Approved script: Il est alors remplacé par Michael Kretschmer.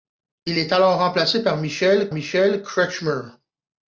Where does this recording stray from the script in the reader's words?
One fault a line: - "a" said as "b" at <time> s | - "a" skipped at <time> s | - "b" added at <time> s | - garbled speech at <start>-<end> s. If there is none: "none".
- "Michael" added at 2.1 s